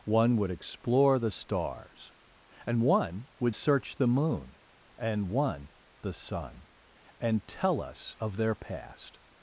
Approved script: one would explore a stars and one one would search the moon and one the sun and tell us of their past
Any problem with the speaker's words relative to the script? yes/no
yes